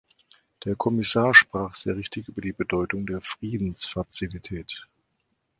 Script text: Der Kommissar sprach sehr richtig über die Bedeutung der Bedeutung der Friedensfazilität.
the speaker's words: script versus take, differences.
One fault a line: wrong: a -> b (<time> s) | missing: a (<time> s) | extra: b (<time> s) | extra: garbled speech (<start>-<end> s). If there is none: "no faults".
missing: Bedeutung der (3.2 s)